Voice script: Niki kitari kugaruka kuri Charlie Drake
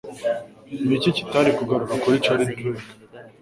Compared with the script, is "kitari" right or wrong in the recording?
right